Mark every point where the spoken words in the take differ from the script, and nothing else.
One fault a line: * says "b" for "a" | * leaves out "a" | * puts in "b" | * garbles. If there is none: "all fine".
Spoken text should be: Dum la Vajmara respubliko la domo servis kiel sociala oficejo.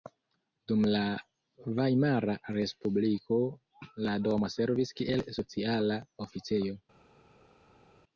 all fine